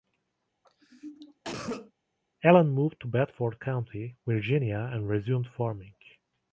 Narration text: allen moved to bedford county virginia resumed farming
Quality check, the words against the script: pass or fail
fail